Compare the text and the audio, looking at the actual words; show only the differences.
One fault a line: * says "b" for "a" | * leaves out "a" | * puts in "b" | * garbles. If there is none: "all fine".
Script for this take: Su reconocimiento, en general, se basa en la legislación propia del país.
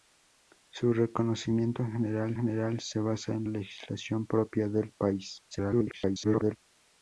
* puts in "general"
* leaves out "la"
* garbles